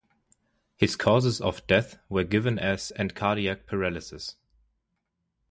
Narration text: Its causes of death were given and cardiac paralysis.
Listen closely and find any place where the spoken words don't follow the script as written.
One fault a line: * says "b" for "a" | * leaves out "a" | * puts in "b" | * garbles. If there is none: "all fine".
* says "His" for "Its"
* puts in "as"